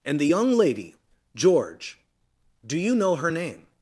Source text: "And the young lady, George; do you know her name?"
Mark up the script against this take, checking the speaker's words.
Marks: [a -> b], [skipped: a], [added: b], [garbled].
"And the young lady, George; do you know her name?"